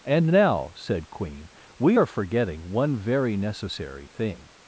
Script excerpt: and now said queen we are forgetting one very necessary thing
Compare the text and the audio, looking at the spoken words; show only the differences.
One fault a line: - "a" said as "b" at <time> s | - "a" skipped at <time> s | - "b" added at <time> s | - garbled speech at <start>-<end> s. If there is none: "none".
none